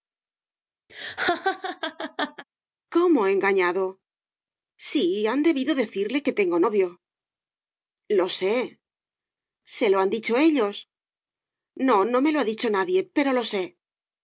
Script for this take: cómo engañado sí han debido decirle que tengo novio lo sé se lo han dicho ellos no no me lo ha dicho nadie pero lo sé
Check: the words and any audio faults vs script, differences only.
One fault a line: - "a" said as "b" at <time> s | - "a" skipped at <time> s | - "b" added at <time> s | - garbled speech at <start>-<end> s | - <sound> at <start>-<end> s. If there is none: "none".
- laugh at 0.9-2.4 s